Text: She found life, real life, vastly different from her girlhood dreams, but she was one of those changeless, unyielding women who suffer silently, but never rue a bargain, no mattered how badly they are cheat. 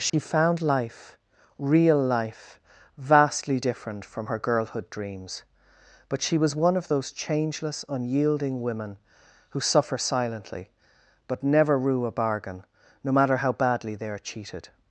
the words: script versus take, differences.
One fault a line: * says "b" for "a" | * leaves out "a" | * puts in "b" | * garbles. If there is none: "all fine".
* says "matter" for "mattered"
* says "cheated" for "cheat"